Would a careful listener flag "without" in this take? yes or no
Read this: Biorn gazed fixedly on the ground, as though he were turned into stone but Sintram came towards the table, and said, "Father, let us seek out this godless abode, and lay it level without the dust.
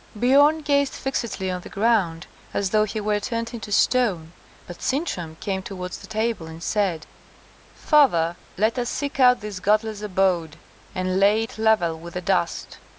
yes